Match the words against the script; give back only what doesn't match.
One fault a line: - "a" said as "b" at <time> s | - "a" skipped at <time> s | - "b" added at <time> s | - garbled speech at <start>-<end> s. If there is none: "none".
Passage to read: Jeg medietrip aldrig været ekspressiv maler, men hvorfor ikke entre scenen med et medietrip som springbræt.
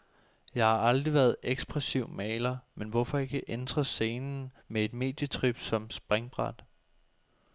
- "medietrip" said as "har" at 0.7 s